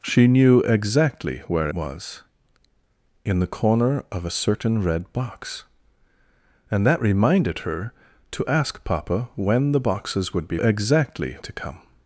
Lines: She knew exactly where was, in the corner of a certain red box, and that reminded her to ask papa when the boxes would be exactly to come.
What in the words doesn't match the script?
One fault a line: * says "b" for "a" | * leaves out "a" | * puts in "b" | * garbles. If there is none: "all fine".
all fine